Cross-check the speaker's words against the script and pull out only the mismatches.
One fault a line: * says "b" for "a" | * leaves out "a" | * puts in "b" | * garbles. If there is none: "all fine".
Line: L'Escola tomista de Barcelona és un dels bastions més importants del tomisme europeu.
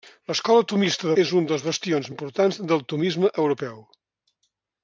* leaves out "Barcelona"
* leaves out "més"